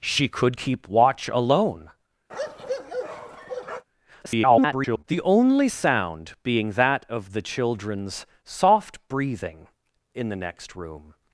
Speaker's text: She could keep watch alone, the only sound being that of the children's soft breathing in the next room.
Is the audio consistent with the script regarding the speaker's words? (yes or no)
no